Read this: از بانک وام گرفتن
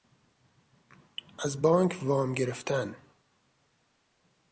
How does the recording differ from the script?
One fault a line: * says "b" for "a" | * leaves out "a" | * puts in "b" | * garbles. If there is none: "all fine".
all fine